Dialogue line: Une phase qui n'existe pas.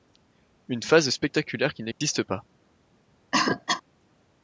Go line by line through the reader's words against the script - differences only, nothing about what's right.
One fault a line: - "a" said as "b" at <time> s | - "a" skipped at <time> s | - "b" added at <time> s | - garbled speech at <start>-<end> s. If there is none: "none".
- "spectaculaire" added at 1.1 s